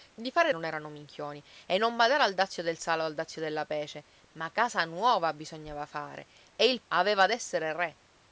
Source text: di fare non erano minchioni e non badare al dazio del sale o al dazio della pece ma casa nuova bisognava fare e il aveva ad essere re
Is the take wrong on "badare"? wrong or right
right